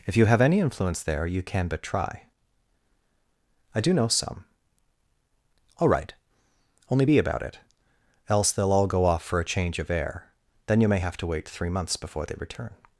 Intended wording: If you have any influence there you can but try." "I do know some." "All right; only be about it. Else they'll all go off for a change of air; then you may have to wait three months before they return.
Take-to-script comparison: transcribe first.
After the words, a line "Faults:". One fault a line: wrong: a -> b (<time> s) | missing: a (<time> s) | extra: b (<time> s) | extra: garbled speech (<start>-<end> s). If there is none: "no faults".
If you have any influence there you can but try." "I do know some." "All right; only be about it. Else they'll all go off for a change of air; then you may have to wait three months before they return.
Faults:
no faults